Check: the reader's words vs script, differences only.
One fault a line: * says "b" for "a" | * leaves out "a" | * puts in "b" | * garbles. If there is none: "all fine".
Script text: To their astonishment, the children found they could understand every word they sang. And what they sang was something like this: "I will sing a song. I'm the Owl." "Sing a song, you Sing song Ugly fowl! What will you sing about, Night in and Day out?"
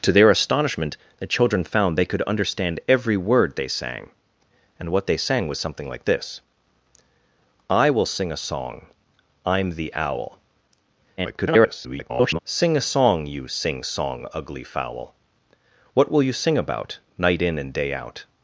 * garbles